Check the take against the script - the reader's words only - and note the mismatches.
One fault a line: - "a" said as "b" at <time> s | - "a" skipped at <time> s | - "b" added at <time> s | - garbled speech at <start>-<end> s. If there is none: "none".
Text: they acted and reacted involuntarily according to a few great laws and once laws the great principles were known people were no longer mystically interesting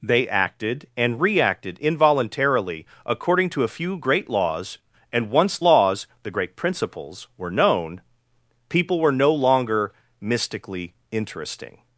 none